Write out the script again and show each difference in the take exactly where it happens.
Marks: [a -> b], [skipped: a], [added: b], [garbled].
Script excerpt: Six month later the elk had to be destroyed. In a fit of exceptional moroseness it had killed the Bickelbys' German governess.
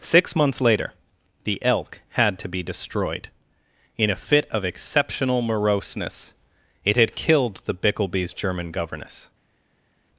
Six [month -> months] later the elk had to be destroyed. In a fit of exceptional moroseness it had killed the Bickelbys' German governess.